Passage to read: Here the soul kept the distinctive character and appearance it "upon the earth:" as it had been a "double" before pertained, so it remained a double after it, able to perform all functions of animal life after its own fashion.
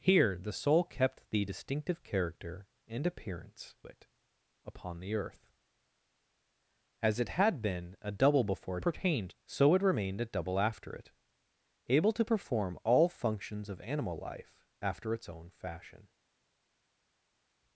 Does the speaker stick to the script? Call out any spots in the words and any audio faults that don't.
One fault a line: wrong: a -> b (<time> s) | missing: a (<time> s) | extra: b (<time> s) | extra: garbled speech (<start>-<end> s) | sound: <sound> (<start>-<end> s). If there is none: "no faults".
no faults